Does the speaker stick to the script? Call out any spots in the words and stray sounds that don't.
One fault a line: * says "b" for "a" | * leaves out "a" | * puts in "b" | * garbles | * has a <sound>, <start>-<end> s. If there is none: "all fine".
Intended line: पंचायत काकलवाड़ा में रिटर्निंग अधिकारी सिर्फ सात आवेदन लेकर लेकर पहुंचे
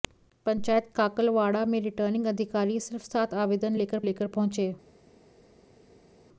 all fine